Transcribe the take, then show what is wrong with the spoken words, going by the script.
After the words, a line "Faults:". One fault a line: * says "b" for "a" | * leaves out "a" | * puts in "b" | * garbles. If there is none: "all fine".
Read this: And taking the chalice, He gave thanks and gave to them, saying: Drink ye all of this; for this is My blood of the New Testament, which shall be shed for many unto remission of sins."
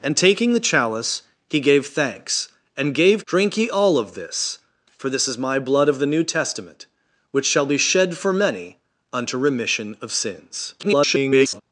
And taking the chalice, He gave thanks and gave: Drink ye all of this; for this is My blood of the New Testament, which shall be shed for many unto remission of sins." [garbled]
Faults:
* leaves out "to them saying"
* garbles